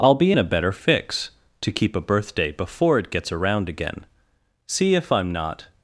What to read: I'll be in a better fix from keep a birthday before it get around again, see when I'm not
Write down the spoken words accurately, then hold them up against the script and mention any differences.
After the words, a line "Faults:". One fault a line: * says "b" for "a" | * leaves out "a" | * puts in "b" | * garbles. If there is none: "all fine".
I'll be in a better fix to keep a birthday before it gets around again, see if I'm not
Faults:
* says "to" for "from"
* says "gets" for "get"
* says "if" for "when"